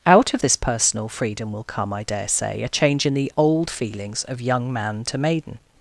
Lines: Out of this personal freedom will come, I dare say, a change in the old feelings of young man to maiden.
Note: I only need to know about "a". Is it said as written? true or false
true